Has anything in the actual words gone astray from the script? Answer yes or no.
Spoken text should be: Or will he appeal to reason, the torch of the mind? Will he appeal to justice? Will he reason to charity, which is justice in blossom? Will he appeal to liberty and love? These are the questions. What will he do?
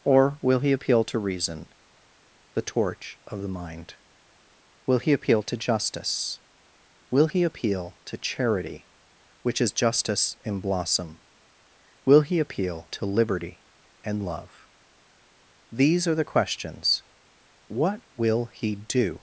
yes